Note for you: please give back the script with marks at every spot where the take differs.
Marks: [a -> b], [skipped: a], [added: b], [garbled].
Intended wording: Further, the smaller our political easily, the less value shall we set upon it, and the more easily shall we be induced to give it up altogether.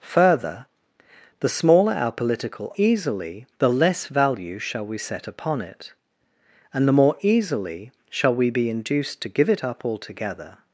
Further, the smaller our political easily, the less value shall we set upon it, and the more easily shall we be induced to give it up altogether.